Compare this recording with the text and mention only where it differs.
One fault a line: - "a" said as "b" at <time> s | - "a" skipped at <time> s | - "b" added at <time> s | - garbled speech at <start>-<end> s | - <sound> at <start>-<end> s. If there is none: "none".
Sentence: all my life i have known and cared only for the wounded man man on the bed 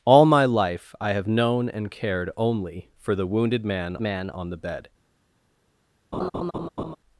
- laugh at 6.1-7.0 s